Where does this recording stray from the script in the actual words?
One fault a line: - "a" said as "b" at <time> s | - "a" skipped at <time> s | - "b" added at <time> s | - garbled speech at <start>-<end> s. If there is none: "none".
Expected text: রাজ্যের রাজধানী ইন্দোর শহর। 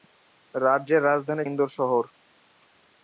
none